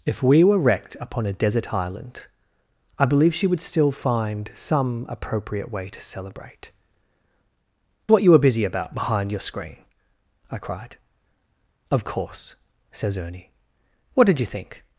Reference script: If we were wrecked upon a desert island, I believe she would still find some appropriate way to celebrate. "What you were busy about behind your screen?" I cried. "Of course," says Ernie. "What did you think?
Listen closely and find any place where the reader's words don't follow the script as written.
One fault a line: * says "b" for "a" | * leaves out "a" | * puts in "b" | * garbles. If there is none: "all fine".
all fine